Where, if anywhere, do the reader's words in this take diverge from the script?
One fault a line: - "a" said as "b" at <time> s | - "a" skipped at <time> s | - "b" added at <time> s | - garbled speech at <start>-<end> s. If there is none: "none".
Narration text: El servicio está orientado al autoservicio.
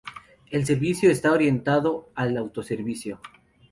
none